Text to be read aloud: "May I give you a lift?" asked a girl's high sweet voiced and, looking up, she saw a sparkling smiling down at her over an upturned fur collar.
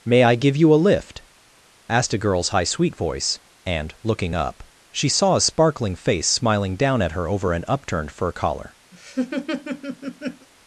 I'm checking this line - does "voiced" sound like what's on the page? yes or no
no